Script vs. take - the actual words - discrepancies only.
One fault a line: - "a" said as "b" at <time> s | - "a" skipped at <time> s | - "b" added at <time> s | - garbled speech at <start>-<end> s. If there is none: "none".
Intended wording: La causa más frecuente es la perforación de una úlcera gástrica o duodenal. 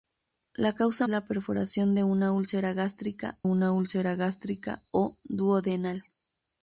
- "más frecuente es la perforación de" said as "la perforación de una úlcera gástrica" at 1.1 s